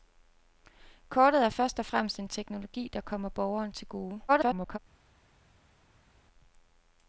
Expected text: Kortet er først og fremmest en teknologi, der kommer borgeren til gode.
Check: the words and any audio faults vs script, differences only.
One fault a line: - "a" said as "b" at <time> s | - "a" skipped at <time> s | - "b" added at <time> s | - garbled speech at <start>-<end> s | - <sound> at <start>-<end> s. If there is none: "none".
- garbled speech at 4.3-4.8 s